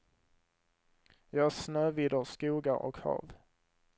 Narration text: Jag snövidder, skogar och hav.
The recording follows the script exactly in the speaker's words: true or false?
true